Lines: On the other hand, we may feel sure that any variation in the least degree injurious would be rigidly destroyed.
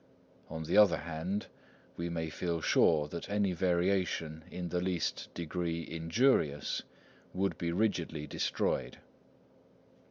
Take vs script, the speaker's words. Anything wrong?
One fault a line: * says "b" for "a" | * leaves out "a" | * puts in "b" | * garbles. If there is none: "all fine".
all fine